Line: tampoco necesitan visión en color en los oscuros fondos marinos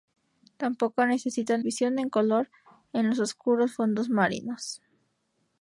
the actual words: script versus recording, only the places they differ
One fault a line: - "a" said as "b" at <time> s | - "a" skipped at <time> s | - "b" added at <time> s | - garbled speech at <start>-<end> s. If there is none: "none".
none